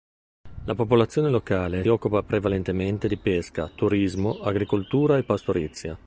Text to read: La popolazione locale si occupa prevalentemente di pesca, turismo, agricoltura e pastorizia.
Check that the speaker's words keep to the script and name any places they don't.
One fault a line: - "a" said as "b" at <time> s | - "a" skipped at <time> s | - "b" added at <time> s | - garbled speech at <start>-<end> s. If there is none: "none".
- "si" skipped at 1.9 s